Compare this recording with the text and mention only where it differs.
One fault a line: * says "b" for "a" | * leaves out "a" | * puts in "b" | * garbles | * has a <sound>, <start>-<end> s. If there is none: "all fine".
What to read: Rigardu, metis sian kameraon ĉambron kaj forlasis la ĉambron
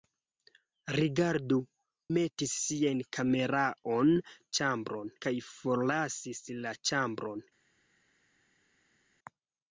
all fine